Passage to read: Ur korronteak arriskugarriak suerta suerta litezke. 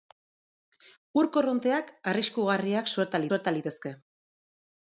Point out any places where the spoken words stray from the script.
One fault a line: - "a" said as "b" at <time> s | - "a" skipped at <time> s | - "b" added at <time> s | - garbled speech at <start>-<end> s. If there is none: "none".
none